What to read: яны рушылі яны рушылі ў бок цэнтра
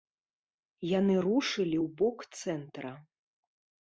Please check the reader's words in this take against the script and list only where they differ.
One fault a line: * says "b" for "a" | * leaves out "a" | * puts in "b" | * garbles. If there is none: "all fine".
* leaves out "яны рушылі"